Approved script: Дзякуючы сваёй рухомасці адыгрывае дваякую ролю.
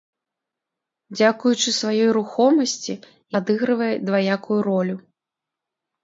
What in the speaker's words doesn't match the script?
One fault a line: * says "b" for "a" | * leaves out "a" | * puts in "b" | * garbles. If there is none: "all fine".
all fine